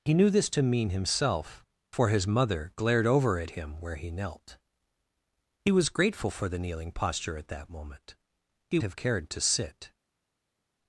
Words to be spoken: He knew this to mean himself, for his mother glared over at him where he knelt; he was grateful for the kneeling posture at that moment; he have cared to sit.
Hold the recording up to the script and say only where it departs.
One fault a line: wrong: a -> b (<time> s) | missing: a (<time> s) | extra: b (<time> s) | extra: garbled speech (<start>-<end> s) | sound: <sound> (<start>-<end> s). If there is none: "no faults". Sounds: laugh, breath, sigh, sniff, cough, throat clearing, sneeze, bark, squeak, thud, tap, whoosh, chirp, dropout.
no faults